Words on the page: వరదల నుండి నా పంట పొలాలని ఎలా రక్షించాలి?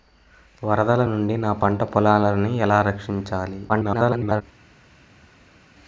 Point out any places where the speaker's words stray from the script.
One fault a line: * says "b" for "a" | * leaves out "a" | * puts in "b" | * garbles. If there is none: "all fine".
* garbles